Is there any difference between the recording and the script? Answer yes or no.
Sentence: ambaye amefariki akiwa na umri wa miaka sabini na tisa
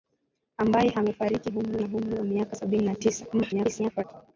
yes